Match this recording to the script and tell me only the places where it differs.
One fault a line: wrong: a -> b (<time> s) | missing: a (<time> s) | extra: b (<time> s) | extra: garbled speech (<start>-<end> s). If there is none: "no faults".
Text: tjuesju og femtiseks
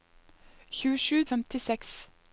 no faults